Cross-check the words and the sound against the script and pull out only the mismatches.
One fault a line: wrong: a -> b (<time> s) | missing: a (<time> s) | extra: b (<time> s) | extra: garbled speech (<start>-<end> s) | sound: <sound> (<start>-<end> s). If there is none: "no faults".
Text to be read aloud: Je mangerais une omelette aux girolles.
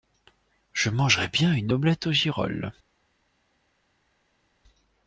extra: bien (1.3 s)